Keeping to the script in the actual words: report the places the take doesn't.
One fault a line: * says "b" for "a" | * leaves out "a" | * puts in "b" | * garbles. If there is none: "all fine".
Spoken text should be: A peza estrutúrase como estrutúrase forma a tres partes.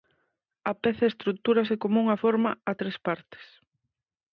* says "unha" for "estrutúrase"